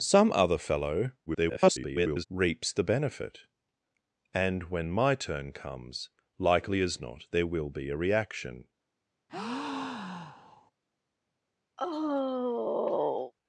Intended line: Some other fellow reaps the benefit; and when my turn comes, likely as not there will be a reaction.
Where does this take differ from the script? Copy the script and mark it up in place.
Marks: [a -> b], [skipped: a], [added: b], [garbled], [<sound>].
Some other fellow [garbled] reaps the benefit; and when my turn comes, likely as not there will be a reaction. [breath] [sigh]